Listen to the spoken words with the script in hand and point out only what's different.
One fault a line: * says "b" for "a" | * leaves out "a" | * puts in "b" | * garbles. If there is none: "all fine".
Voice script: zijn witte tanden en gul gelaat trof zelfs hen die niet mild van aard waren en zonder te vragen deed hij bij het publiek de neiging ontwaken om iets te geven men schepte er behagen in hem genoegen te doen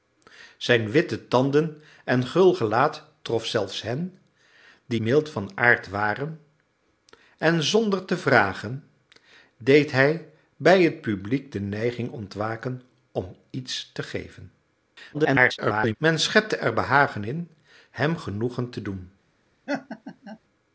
* leaves out "niet"
* garbles